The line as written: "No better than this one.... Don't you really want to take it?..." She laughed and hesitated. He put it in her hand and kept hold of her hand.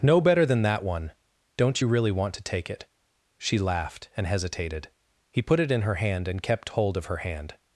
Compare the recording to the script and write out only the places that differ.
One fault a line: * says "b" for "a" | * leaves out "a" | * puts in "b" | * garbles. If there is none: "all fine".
* says "that" for "this"